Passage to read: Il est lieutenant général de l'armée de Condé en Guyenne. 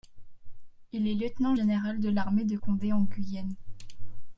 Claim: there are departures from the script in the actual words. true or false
false